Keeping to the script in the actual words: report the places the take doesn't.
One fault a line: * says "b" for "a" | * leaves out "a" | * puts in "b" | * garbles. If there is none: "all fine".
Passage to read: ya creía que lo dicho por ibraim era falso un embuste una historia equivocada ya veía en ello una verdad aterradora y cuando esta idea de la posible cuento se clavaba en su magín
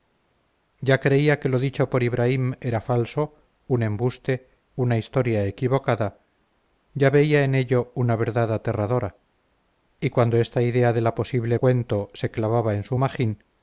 all fine